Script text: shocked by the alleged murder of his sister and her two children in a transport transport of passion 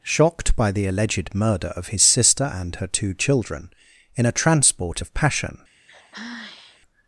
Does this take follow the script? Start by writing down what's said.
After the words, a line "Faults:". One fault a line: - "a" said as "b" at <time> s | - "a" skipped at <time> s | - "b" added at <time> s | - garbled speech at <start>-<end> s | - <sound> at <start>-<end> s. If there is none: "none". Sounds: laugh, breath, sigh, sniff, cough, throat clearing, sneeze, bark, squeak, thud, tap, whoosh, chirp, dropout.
shocked by the alleged murder of his sister and her two children in a transport of passion
Faults:
- "transport" skipped at 5.0 s
- sigh at 5.9-6.8 s